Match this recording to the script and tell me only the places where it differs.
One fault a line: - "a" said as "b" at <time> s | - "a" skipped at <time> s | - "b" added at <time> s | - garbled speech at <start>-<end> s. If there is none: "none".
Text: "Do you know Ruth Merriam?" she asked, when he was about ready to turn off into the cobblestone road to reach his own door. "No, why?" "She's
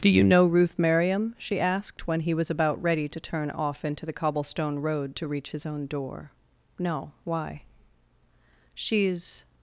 none